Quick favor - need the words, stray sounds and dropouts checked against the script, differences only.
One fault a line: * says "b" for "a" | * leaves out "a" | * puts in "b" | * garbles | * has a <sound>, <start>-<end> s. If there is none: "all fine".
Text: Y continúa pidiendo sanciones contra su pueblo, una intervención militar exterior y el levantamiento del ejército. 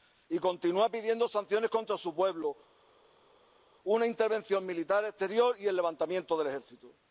all fine